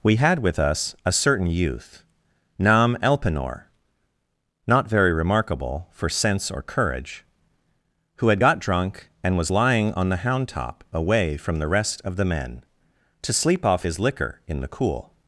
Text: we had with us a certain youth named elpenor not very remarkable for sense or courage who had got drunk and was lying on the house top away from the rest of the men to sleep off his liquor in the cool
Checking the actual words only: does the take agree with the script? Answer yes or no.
no